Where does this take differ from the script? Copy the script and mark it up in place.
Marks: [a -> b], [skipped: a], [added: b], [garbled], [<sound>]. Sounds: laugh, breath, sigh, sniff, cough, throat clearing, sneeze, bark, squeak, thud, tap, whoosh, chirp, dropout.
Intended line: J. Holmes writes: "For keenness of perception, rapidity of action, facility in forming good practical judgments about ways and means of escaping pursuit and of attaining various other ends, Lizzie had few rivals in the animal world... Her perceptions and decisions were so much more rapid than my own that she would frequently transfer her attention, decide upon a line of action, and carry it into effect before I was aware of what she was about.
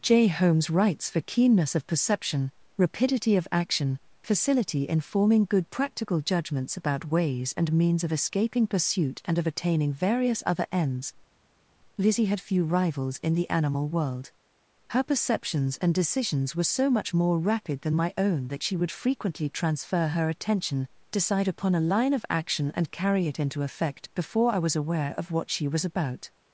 J. Holmes writes: "For keenness of perception, rapidity of action, facility in forming good practical judgments about ways and means of escaping pursuit and of attaining various other ends, Lizzie had few rivals in the animal world... Her perceptions and decisions were so much more rapid than my own that she would frequently transfer her attention, decide upon a line of action, and carry it into effect before I was aware of what she was about.